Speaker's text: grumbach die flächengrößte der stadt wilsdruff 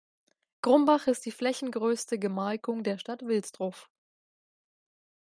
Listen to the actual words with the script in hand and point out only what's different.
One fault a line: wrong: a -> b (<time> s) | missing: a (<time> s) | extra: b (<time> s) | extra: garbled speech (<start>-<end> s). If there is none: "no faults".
extra: ist (1.1 s)
extra: gemarkung (2.2 s)